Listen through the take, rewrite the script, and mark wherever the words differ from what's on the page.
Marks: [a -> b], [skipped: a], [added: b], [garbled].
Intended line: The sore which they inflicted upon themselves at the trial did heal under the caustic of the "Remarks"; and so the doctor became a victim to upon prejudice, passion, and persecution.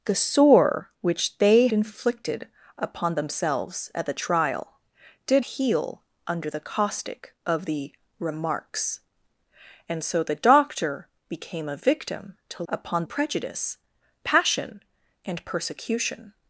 The sore which they inflicted upon themselves at the trial did heal under the caustic of the "Remarks"; and so the doctor became a victim to upon prejudice, passion, and persecution.